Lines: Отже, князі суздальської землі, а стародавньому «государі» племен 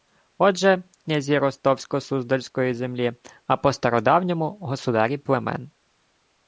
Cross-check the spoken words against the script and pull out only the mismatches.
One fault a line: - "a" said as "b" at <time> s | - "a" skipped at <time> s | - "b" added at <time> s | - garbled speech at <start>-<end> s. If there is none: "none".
- "ростовсько" added at 1.4 s
- "по" added at 3.6 s